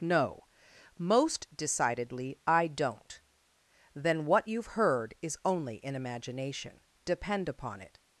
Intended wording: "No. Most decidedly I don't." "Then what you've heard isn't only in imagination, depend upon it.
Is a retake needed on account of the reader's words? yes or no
yes